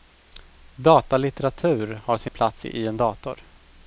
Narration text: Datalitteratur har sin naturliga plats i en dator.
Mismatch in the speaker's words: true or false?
true